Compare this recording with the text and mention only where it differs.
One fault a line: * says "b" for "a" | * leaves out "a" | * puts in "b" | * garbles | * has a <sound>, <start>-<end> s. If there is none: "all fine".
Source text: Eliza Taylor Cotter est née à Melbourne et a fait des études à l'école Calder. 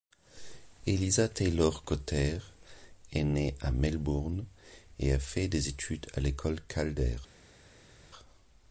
all fine